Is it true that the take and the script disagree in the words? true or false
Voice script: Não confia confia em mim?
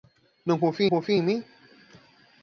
false